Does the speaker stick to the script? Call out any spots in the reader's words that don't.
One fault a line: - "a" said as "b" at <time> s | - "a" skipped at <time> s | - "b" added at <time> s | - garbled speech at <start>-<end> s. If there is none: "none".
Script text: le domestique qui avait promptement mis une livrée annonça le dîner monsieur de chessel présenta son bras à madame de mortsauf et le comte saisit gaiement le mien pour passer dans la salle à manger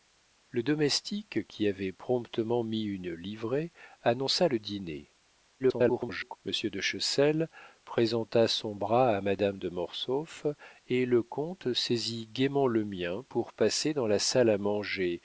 - garbled speech at 5.6-6.4 s